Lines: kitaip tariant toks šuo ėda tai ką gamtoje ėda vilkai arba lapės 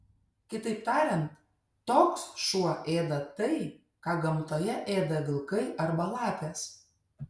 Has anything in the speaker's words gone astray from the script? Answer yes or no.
no